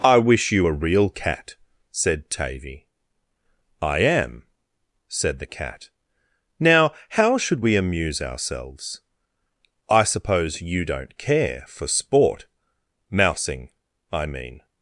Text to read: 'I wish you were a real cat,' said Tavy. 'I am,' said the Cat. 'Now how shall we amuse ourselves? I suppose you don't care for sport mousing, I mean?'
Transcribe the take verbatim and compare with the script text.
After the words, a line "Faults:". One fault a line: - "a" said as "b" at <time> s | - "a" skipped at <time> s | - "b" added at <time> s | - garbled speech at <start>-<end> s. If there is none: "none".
'I wish you a real cat,' said Tavy. 'I am,' said the Cat. 'Now how should we amuse ourselves? I suppose you don't care for sport mousing, I mean?'
Faults:
- "were" skipped at 0.7 s
- "shall" said as "should" at 7.4 s